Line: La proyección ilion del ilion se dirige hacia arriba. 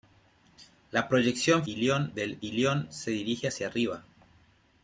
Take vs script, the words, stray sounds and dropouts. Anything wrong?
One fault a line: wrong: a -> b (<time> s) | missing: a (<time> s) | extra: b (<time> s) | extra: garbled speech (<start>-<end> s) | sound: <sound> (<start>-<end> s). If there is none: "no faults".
no faults